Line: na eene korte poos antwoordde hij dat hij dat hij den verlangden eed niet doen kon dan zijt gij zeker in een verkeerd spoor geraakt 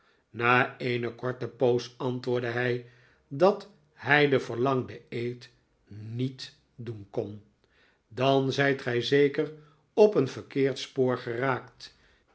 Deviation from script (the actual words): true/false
true